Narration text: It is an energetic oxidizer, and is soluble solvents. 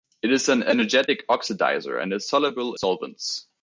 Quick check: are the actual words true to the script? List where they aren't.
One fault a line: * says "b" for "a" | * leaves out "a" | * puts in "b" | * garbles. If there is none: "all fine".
all fine